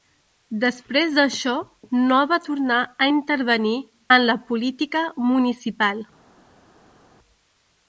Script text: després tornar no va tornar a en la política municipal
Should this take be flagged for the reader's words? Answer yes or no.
yes